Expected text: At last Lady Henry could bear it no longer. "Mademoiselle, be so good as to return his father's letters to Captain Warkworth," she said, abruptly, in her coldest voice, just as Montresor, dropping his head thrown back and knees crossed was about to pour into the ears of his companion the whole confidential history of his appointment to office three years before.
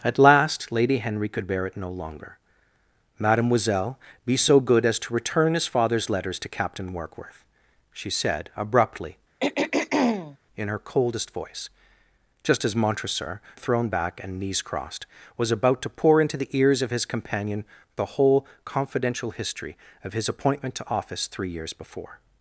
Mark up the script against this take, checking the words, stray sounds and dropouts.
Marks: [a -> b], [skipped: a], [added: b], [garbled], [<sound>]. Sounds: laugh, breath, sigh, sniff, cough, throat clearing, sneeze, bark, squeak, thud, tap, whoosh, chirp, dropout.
At last Lady Henry could bear it no longer. "Mademoiselle, be so good as to return his father's letters to Captain Warkworth," she said, abruptly, [throat clearing] in her coldest voice, just as Montresor, [skipped: dropping his head] thrown back and knees crossed was about to pour into the ears of his companion the whole confidential history of his appointment to office three years before.